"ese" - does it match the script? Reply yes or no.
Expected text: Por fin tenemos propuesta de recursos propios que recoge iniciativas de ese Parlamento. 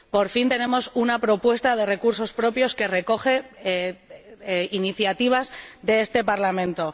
no